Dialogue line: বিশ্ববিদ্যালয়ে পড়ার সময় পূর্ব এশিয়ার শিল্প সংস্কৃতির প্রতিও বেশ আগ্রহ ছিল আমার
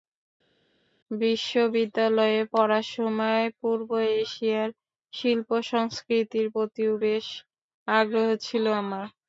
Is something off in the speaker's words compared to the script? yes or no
no